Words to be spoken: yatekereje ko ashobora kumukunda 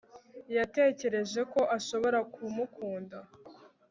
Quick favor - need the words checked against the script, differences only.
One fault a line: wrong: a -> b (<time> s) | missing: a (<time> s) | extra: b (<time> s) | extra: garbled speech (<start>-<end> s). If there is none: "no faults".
no faults